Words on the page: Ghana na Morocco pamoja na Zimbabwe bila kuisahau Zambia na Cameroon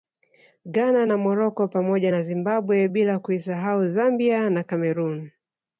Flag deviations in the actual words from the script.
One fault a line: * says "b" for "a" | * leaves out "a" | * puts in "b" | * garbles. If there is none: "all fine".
all fine